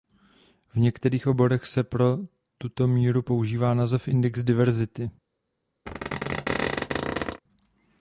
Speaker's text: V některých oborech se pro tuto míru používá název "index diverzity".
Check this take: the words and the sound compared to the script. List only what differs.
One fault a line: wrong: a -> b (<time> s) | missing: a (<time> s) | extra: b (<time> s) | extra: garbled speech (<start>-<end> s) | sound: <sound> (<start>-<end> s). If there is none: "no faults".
sound: squeak (5.9-7.4 s)